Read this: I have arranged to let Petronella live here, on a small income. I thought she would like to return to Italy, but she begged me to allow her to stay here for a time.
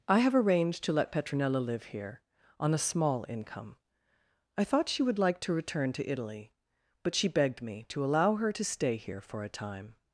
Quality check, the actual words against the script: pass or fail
pass